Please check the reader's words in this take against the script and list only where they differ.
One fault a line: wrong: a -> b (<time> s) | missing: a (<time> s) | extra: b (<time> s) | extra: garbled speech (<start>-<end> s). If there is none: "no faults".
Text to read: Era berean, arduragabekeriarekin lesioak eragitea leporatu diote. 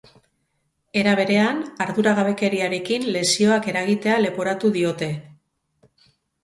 no faults